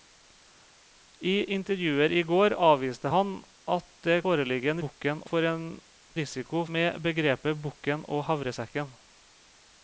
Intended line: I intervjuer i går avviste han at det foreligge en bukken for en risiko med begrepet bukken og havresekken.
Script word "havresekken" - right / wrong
right